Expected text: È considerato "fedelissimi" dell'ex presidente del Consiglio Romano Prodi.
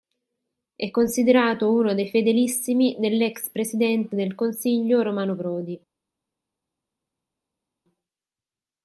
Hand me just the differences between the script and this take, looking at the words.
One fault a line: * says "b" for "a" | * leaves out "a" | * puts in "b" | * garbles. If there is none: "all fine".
* puts in "uno dei"